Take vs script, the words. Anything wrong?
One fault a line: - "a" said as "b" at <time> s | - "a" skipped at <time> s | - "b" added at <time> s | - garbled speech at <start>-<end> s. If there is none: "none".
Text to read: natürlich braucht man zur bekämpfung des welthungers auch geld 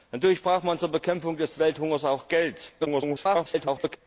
- garbled speech at 2.8-4.0 s